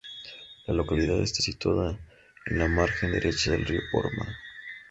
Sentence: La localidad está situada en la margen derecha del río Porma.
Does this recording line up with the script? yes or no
yes